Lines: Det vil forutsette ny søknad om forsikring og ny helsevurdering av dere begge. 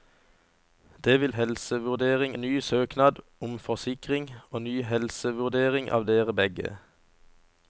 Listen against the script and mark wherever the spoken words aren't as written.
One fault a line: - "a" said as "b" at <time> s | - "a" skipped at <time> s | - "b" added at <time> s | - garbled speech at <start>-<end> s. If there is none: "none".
- "forutsette" said as "helsevurdering" at 1.3 s